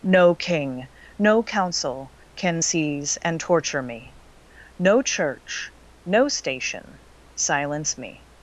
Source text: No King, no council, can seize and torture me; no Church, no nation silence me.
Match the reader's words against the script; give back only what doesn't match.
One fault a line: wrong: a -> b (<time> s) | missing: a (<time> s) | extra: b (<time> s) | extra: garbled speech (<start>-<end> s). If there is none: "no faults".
wrong: nation -> station (6.3 s)